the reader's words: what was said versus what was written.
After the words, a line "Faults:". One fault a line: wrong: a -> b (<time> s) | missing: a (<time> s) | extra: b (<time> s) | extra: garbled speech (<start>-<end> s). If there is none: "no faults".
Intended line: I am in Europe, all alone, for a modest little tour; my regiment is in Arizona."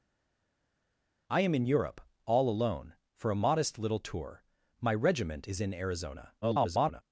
I am in Europe, all alone, for a modest little tour; my regiment is in Arizona." [garbled]
Faults:
extra: garbled speech (6.4-7.0 s)